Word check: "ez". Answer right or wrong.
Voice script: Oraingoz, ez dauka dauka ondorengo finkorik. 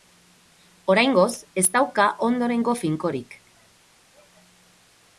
right